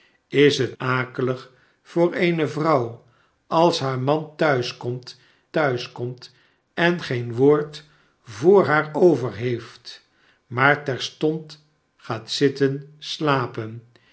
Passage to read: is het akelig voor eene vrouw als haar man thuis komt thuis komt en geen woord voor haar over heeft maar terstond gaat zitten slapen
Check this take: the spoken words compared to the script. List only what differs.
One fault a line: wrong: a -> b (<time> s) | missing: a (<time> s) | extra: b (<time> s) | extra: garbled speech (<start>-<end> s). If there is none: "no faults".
no faults